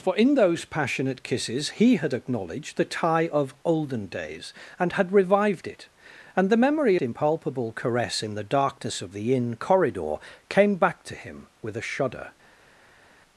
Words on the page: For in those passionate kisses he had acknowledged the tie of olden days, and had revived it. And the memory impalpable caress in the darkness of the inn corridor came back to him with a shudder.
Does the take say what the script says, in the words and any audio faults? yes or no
yes